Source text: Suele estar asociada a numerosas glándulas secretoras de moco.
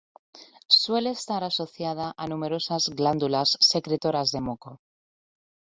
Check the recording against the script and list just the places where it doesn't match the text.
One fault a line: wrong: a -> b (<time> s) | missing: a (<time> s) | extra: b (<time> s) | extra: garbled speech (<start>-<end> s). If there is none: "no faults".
no faults